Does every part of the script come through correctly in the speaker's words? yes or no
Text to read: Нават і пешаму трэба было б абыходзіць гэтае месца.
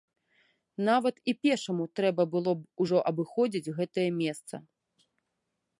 no